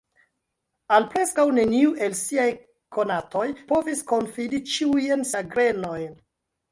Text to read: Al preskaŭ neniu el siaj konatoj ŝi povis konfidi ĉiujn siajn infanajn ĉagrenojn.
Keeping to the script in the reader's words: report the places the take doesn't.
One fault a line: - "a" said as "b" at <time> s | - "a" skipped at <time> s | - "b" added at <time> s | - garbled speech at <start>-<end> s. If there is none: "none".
- "ŝi" skipped at 3.5 s
- "siajn infanajn" skipped at 5.3 s